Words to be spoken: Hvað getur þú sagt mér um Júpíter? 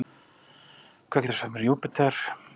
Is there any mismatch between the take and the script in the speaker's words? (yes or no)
no